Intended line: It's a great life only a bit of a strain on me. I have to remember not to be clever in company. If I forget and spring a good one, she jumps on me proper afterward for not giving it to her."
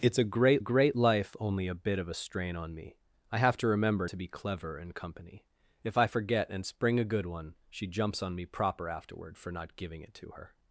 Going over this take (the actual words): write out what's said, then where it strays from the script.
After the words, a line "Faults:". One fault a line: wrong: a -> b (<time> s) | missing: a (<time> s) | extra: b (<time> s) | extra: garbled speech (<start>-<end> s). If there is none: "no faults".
It's a great great life only a bit of a strain on me. I have to remember to be clever in company. If I forget and spring a good one, she jumps on me proper afterward for not giving it to her."
Faults:
extra: great (0.6 s)
missing: not (4.1 s)